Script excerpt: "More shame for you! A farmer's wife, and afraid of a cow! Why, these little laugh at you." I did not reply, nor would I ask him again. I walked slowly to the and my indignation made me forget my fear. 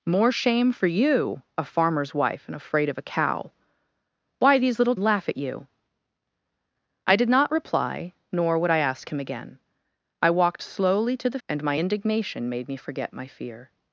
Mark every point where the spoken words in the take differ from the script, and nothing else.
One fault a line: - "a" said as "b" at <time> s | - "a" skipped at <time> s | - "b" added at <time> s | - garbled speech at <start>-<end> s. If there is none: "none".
none